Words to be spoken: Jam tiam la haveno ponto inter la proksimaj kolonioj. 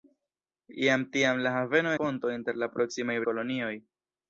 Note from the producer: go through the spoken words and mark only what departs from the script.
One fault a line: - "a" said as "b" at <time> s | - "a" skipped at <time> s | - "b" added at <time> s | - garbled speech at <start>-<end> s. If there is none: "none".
none